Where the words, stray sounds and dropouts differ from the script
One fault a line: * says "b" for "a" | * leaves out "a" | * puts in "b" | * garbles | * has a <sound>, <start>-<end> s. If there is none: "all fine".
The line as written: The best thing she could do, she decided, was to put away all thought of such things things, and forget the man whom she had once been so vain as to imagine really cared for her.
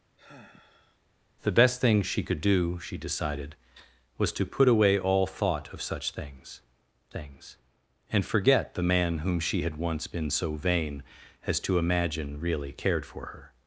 * has a sigh, 0.2-1.0 s